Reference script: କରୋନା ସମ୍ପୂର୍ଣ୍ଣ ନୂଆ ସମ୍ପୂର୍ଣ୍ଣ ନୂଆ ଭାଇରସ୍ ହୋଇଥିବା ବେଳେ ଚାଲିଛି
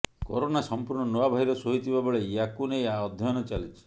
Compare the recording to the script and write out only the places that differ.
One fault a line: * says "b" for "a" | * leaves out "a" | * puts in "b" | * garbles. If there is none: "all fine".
* leaves out "ସମ୍ପୂର୍ଣ୍ଣ ନୂଆ"
* puts in "ୟାକୁ ନେଇ ଅଧ୍ୟୟନ"